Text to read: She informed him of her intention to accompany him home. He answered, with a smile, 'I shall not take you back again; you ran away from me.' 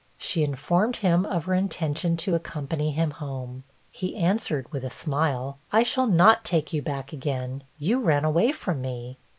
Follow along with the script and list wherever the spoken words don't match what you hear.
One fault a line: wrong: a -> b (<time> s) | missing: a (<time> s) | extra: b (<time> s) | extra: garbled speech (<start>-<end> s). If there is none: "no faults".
no faults